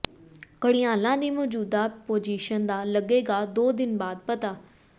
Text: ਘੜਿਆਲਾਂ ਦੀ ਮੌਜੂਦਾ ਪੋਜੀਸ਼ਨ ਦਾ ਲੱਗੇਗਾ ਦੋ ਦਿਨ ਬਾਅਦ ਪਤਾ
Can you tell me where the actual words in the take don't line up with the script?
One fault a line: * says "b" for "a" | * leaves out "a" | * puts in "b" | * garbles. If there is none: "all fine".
all fine